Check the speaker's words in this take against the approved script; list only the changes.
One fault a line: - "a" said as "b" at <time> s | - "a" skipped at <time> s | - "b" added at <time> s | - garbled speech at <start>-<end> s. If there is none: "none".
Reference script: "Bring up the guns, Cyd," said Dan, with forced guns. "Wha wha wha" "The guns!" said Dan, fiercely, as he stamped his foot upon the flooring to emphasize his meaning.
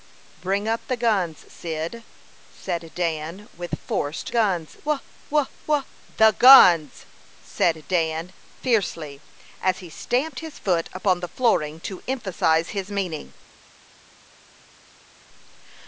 none